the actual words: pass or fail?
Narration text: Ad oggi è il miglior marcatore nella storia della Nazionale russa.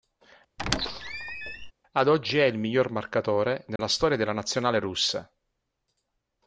pass